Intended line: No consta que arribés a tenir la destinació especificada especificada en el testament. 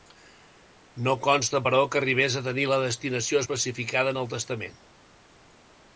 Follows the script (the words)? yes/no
no